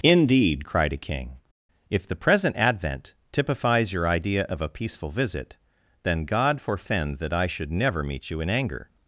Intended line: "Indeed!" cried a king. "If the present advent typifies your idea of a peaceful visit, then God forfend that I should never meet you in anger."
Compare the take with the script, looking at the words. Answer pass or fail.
pass